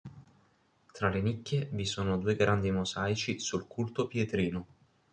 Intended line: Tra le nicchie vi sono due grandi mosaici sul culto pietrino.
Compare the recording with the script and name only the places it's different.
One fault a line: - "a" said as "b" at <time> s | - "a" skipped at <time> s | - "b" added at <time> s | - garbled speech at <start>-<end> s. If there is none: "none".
none